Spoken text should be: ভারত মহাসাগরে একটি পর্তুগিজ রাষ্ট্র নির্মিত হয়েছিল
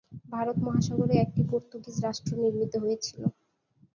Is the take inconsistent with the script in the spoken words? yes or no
no